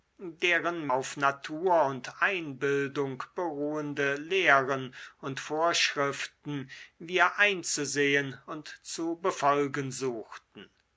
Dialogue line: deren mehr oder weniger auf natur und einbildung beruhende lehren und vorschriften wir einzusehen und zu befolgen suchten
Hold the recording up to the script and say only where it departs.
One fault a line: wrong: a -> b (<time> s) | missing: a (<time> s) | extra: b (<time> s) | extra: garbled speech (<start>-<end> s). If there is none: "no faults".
missing: mehr oder weniger (0.9 s)